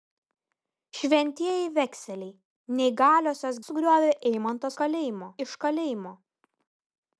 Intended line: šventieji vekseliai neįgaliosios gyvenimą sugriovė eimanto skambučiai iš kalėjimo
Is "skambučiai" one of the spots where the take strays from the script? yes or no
yes